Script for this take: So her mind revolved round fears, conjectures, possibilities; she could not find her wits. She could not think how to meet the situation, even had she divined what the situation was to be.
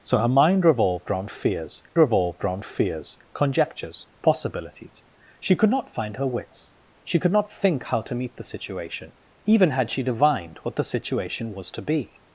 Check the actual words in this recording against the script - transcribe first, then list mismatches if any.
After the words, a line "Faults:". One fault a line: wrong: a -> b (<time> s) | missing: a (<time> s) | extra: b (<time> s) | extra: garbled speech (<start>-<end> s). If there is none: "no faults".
So her mind revolved round fears revolved round fears, conjectures, possibilities; she could not find her wits. She could not think how to meet the situation, even had she divined what the situation was to be.
Faults:
extra: revolved round fears (2.0 s)